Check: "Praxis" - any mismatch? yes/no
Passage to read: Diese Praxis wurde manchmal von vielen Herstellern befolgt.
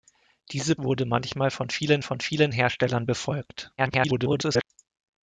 yes